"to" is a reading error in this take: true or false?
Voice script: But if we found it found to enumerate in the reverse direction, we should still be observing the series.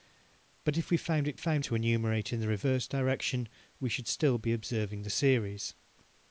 false